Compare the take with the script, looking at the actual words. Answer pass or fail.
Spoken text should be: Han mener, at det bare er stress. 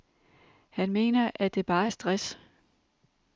pass